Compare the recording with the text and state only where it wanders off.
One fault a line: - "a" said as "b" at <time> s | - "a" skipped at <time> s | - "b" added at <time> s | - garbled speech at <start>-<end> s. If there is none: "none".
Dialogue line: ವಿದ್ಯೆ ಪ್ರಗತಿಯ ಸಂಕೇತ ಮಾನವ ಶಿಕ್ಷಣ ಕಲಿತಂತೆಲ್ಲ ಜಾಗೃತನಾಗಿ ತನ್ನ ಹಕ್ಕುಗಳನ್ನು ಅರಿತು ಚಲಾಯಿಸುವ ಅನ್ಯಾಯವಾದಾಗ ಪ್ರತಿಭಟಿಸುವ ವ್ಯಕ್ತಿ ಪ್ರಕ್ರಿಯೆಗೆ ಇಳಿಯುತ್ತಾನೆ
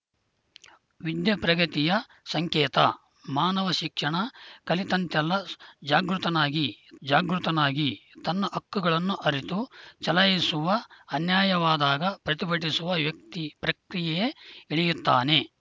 - "ಜಾಗೃತನಾಗಿ" added at 7.0 s